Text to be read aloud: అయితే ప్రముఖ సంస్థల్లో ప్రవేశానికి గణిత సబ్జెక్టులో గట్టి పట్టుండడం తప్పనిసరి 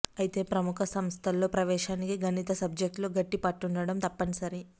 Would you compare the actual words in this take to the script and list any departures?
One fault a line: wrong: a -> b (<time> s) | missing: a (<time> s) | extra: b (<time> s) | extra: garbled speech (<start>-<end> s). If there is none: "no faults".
no faults